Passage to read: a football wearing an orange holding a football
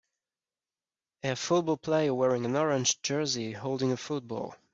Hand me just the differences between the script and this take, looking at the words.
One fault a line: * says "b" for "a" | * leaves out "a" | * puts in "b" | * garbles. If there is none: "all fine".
* puts in "player"
* puts in "jersey"